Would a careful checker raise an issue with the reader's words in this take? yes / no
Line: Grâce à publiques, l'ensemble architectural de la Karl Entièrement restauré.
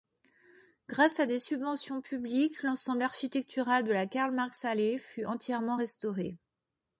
yes